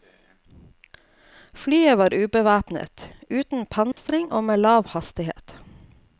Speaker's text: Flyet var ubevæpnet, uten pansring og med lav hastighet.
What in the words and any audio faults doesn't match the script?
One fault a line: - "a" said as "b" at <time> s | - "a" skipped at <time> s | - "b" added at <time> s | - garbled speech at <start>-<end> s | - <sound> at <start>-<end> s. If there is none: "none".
- dropout at 3.9-4.0 s